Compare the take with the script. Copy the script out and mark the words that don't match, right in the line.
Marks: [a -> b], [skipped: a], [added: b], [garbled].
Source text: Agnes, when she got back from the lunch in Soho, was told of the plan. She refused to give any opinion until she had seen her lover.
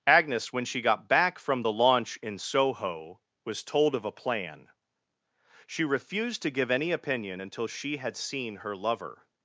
Agnes, when she got back from the [lunch -> launch] in Soho, was told of [the -> a] plan. She refused to give any opinion until she had seen her lover.